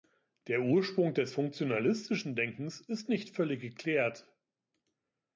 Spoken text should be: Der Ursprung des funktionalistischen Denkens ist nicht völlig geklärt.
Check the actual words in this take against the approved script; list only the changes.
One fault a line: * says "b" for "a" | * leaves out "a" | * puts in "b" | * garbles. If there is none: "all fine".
all fine